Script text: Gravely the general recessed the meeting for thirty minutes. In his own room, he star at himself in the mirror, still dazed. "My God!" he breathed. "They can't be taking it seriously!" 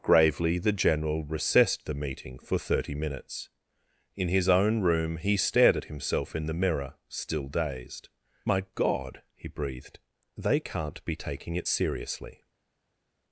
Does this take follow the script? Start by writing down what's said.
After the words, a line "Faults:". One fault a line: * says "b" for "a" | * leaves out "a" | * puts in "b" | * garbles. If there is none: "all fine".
Gravely the general recessed the meeting for thirty minutes. In his own room, he stared at himself in the mirror, still dazed. "My God!" he breathed. "They can't be taking it seriously!"
Faults:
* says "stared" for "star"